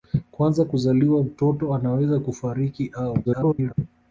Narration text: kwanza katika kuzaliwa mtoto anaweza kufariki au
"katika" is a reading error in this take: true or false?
true